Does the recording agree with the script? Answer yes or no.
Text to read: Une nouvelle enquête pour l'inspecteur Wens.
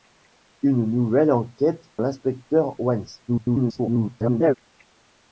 no